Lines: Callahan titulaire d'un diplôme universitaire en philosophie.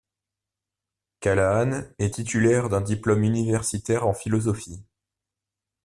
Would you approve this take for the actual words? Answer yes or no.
no